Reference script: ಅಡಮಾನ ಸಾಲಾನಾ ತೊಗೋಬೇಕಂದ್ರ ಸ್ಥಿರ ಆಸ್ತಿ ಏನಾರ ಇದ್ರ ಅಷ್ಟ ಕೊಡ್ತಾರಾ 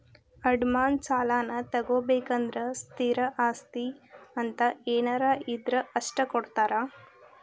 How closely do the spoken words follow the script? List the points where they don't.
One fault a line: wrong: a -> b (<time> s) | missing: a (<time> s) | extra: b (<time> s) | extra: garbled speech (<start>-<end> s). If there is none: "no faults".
extra: ಅಂತ (4.4 s)